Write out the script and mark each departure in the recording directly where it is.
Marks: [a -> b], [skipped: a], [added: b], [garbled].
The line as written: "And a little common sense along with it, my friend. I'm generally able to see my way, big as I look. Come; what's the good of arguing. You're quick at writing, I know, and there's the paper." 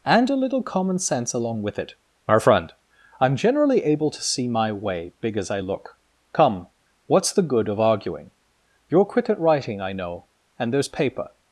"And a little common sense along with it, my friend. I'm generally able to see my way, big as I look. Come; what's the good of arguing. You're quick at writing, I know, and there's [skipped: the] paper."